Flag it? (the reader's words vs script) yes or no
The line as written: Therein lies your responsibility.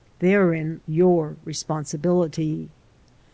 yes